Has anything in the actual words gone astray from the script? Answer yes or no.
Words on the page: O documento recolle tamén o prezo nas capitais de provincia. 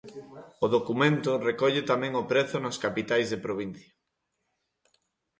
no